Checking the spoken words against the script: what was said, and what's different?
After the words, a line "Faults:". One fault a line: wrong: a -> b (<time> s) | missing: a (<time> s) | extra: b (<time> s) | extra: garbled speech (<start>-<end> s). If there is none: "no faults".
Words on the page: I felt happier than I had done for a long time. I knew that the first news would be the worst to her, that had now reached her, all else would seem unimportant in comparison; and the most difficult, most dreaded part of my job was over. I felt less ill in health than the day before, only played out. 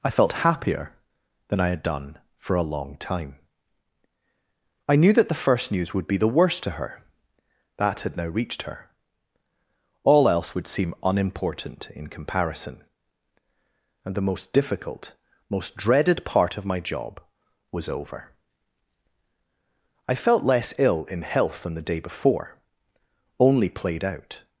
I felt happier than I had done for a long time. I knew that the first news would be the worst to her, that had now reached her, all else would seem unimportant in comparison; and the most difficult, most dreaded part of my job was over. I felt less ill in health than the day before, only played out.
Faults:
no faults